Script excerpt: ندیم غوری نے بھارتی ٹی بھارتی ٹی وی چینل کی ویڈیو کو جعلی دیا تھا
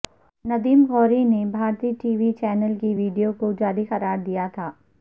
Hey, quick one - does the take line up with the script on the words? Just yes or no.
no